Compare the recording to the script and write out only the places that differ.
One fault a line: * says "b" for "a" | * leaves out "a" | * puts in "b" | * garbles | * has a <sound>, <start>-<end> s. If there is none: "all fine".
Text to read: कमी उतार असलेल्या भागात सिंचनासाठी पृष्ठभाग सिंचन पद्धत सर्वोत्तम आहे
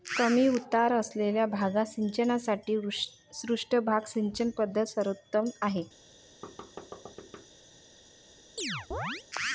* has a thud, 6.4-7.5 s
* has a chirp, 8.6-9.2 s